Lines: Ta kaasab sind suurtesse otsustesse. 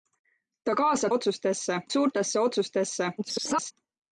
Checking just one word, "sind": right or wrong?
wrong